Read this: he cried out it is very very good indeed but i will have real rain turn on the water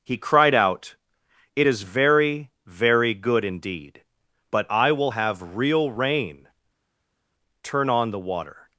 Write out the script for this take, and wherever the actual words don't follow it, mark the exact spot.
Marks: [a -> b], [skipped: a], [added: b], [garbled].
he cried out it is very very good indeed but i will have real rain turn on the water